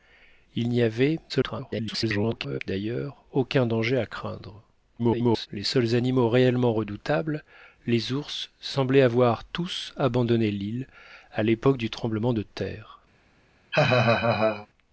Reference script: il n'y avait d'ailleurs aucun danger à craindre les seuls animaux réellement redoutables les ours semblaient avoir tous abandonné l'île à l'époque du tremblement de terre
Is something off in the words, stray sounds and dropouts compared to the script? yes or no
yes